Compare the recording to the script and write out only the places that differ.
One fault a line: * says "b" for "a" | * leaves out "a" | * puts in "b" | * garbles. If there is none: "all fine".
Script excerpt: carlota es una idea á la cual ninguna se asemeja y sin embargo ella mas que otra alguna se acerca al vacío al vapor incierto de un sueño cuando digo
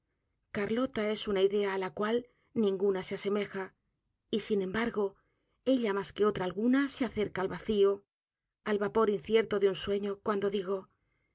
all fine